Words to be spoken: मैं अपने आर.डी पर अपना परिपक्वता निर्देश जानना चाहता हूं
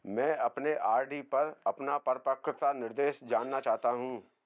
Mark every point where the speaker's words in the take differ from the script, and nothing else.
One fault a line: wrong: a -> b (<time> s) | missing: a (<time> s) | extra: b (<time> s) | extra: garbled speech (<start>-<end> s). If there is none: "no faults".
no faults